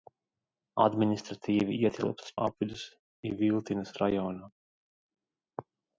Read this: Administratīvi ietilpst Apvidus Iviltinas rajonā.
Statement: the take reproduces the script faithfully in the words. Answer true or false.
true